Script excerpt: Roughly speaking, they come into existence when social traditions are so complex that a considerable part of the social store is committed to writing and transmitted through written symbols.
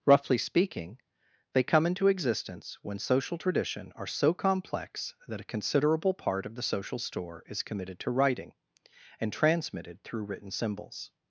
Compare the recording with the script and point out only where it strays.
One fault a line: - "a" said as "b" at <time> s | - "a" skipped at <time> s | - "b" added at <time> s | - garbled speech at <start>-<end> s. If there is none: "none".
- "traditions" said as "tradition" at 3.4 s